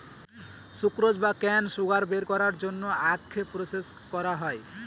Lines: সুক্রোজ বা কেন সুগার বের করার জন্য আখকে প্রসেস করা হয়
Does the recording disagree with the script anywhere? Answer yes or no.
no